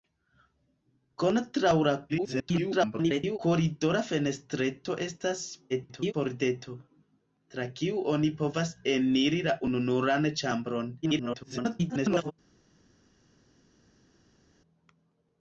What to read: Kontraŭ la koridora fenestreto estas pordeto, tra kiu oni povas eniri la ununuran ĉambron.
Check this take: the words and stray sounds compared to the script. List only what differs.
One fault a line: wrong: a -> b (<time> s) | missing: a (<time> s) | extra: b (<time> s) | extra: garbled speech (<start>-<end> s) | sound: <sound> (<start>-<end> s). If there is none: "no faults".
extra: garbled speech (2.1-3.4 s)
extra: garbled speech (5.7-6.1 s)
extra: garbled speech (11.0-12.3 s)